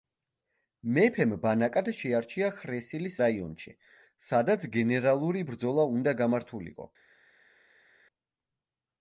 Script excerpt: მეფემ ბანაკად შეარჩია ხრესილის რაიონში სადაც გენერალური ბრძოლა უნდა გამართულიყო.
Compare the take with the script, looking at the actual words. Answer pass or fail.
pass